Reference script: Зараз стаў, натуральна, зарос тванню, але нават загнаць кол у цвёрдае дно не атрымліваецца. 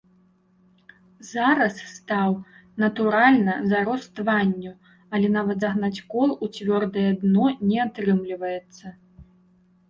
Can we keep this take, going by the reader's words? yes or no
yes